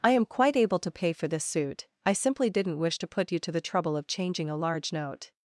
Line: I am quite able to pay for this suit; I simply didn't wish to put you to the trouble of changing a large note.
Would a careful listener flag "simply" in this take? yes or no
no